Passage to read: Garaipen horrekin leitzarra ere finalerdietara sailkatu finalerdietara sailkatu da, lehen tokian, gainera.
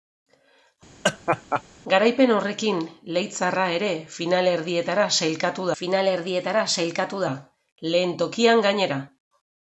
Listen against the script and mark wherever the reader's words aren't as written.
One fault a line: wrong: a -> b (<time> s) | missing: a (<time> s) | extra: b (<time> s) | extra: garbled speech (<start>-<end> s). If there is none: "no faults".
no faults